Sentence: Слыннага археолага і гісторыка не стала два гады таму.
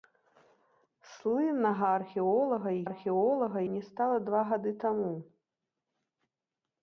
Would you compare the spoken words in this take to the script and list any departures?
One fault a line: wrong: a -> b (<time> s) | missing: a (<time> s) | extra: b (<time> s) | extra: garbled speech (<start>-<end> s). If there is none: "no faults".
wrong: гісторыка -> археолага (2.9 s)